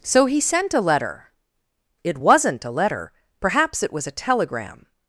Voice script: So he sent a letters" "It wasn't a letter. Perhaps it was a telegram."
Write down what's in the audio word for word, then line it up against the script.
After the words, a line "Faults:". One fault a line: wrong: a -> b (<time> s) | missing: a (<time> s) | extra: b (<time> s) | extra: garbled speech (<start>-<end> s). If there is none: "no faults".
So he sent a letter" "It wasn't a letter. Perhaps it was a telegram."
Faults:
wrong: letters -> letter (0.8 s)